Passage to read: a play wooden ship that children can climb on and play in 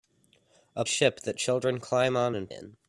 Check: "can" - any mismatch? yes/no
yes